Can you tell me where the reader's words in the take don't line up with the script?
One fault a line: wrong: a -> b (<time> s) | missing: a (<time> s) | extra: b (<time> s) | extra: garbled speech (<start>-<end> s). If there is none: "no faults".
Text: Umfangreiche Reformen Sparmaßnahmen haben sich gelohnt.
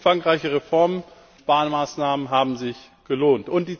no faults